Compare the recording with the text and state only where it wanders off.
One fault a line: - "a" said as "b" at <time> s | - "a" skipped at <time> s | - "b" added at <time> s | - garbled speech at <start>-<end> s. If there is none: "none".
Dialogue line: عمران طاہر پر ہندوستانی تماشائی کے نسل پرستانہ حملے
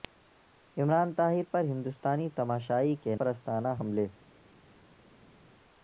- "نسل" skipped at 3.1 s